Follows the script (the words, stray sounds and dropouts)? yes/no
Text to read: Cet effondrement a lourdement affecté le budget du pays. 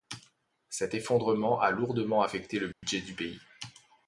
no